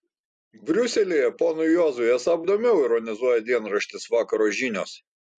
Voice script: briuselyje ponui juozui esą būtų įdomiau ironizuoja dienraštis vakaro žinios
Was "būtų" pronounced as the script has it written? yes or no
no